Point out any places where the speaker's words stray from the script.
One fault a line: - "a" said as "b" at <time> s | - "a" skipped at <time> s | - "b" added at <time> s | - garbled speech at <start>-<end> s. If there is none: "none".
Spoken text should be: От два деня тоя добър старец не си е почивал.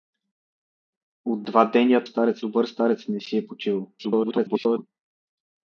- "тоя" said as "старец" at 2.0 s
- garbled speech at 4.0-4.9 s